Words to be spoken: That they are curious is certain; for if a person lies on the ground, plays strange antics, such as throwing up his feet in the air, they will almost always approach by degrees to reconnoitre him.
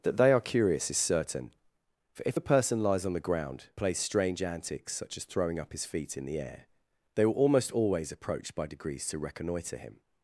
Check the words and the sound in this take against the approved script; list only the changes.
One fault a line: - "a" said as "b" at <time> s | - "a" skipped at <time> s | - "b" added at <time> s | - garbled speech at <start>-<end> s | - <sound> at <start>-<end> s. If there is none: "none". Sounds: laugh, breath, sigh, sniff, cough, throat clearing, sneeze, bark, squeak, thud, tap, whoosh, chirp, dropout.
none